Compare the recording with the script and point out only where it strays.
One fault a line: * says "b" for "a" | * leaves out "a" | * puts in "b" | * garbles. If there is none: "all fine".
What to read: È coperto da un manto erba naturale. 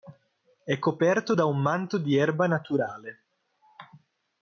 * puts in "di"